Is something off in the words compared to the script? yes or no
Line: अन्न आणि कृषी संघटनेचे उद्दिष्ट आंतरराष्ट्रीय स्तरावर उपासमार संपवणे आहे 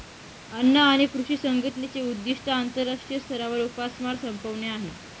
no